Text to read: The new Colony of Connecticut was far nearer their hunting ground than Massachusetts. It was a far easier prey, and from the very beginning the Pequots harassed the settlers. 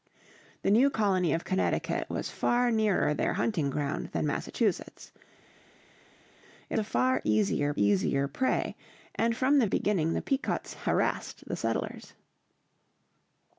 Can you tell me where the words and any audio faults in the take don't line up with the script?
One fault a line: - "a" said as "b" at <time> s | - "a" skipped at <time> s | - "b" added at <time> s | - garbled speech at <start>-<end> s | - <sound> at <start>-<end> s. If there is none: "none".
- "was" skipped at 6.8 s
- "easier" added at 7.8 s
- "very" skipped at 9.6 s